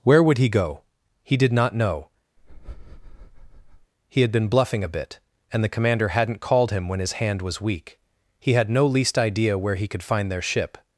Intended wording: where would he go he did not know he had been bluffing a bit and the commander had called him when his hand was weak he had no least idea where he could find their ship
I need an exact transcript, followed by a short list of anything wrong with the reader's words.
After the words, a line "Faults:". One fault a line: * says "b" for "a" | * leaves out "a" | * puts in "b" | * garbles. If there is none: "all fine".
where would he go he did not know he had been bluffing a bit and the commander hadn't called him when his hand was weak he had no least idea where he could find their ship
Faults:
* says "hadn't" for "had"